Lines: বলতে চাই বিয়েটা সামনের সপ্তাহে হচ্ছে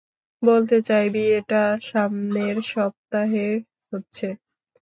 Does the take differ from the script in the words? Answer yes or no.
no